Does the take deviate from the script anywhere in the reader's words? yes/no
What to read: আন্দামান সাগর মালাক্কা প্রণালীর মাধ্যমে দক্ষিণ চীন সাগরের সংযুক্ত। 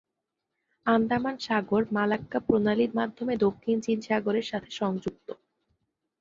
yes